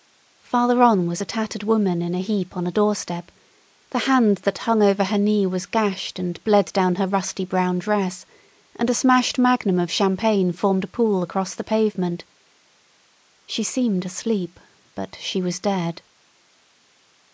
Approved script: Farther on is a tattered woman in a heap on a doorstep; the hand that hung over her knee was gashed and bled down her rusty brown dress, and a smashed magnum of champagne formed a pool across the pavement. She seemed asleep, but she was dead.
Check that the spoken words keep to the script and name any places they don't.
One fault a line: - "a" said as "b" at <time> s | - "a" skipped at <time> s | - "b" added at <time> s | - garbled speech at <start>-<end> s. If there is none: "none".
- "is" said as "was" at 1.1 s